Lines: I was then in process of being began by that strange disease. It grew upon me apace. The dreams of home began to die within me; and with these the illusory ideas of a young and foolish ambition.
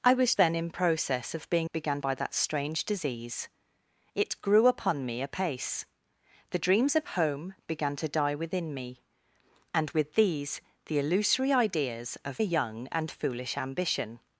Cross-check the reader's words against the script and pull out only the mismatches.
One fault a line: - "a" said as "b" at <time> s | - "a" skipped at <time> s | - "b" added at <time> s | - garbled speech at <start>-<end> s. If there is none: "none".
none